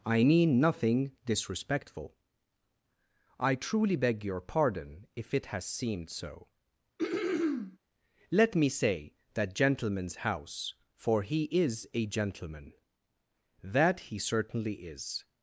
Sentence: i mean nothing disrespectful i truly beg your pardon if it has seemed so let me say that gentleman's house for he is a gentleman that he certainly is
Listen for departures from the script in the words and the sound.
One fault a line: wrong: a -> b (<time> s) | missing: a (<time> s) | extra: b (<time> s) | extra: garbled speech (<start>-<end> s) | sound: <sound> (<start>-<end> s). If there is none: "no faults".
sound: throat clearing (7.0-7.8 s)